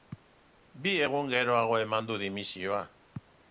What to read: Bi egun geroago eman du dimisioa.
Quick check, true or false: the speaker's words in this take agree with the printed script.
true